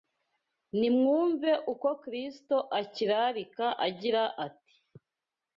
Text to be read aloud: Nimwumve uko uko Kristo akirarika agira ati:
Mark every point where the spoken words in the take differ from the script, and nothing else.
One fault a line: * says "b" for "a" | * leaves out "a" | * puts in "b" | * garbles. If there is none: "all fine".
* leaves out "uko"